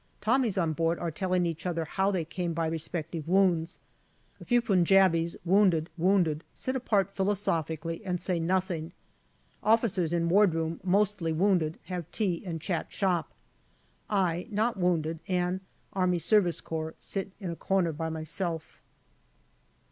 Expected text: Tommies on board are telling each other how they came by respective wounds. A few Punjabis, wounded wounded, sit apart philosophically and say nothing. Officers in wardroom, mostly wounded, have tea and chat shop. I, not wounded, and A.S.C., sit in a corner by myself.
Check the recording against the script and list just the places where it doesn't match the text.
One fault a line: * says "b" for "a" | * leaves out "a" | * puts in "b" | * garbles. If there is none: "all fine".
all fine